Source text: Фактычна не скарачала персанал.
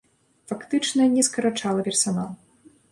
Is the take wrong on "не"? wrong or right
right